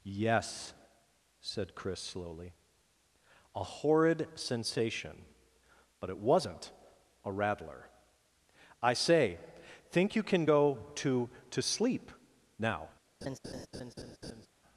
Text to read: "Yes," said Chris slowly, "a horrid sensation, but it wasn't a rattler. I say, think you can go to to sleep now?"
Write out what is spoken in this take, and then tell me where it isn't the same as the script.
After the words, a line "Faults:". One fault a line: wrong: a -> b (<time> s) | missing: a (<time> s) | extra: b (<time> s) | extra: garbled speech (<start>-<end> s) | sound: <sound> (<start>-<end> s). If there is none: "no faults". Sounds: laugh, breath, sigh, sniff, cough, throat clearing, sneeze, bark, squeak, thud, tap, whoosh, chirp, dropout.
"Yes," said Chris slowly, "a horrid sensation, but it wasn't a rattler. I say, think you can go to to sleep now?"
Faults:
sound: laugh (13.2-14.5 s)